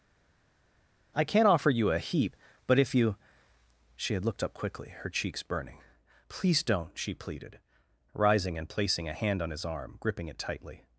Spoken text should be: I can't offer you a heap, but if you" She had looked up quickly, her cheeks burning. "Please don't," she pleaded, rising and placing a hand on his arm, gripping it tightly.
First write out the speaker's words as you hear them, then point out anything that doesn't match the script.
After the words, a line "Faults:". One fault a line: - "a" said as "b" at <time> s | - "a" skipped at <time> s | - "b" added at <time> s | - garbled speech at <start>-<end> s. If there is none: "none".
I can't offer you a heap, but if you" She had looked up quickly, her cheeks burning. "Please don't," she pleaded, rising and placing a hand on his arm, gripping it tightly.
Faults:
none